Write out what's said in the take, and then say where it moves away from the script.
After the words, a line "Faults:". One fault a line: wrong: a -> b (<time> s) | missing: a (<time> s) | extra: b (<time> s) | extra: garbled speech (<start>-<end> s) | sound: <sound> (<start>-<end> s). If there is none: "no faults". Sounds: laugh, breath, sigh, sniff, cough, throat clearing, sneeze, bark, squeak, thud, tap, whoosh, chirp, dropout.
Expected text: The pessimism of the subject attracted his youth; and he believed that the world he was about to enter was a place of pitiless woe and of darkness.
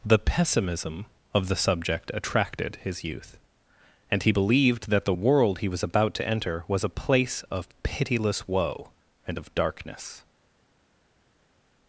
The pessimism of the subject attracted his youth; and he believed that the world he was about to enter was a place of pitiless woe and of darkness.
Faults:
no faults